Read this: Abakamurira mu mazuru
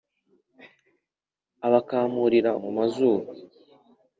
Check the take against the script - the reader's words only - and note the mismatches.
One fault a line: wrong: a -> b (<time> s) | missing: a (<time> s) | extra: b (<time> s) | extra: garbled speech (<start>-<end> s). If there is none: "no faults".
no faults